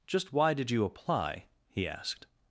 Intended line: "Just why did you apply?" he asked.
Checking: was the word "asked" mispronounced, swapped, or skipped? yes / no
no